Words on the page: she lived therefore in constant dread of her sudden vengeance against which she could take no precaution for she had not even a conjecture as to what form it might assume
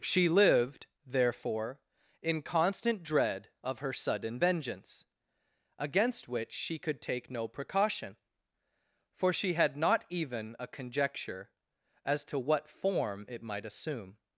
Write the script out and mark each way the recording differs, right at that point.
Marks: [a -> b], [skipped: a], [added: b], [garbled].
she lived therefore in constant dread of her sudden vengeance against which she could take no precaution for she had not even a conjecture as to what form it might assume